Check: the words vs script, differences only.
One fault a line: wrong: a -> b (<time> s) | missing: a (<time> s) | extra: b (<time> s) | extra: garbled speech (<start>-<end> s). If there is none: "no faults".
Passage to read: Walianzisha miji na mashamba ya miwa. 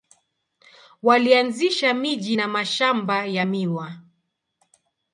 no faults